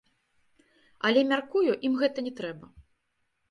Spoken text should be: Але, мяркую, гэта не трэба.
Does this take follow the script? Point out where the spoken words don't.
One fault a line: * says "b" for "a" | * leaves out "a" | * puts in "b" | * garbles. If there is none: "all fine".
* puts in "ім"